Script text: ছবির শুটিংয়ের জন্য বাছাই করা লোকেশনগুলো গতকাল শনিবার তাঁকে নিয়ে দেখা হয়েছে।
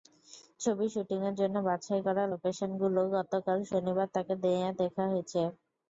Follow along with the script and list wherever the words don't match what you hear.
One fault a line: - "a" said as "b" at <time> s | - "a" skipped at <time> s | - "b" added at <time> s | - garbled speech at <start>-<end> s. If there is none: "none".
none